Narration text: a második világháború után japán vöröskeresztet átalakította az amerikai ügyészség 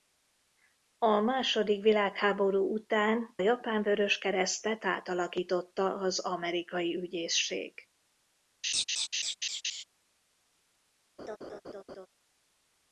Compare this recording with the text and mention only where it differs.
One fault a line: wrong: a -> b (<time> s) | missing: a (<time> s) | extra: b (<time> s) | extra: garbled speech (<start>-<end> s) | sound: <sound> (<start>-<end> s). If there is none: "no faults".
sound: laugh (8.6-9.8 s)
sound: laugh (11.2-12.1 s)